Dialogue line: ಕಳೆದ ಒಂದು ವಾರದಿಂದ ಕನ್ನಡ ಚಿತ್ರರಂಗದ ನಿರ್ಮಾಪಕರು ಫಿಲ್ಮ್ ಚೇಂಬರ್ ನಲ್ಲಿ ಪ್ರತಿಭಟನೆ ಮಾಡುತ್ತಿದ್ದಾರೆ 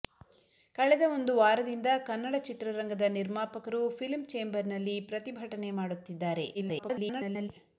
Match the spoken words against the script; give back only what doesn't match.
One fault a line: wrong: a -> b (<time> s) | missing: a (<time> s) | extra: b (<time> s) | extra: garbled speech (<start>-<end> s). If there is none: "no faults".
extra: garbled speech (6.5-7.5 s)